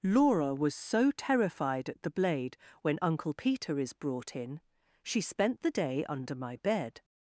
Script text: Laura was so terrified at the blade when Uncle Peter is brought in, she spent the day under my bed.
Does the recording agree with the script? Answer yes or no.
yes